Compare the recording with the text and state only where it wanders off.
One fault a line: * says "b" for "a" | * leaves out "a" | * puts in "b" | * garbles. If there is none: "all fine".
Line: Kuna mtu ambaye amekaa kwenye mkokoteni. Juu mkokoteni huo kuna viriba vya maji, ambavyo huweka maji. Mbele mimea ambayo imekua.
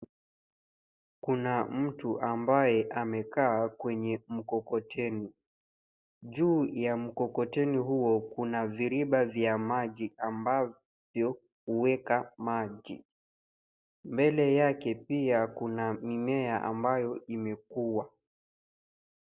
* puts in "ya"
* puts in "yake pia kuna"